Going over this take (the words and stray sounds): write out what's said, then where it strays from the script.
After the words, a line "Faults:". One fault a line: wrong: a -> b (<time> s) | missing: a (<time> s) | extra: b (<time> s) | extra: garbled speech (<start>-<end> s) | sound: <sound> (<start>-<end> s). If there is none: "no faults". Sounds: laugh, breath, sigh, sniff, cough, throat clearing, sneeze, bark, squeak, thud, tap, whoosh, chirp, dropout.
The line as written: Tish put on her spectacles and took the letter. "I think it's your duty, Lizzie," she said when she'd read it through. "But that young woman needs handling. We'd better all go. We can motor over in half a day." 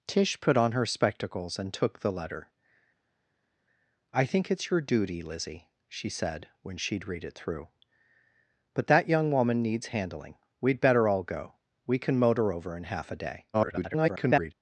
Tish put on her spectacles and took the letter. "I think it's your duty, Lizzie," she said when she'd read it through. "But that young woman needs handling. We'd better all go. We can motor over in half a day." [garbled]
Faults:
extra: garbled speech (13.5-14.5 s)